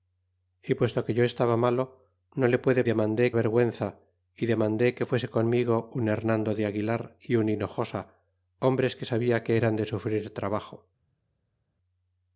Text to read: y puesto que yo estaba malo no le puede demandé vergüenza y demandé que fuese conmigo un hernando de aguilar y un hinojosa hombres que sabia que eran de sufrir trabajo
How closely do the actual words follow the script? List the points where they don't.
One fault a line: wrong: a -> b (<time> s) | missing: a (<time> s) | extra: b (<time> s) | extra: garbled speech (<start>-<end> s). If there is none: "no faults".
no faults